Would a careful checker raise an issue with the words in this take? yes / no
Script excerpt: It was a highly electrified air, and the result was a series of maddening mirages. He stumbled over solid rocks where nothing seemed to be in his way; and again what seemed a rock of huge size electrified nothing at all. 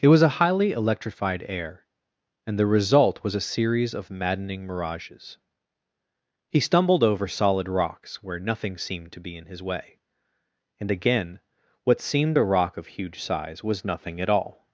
yes